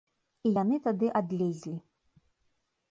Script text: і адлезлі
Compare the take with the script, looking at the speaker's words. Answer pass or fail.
fail